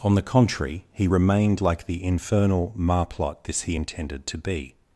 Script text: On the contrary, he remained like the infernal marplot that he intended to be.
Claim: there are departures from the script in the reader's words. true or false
true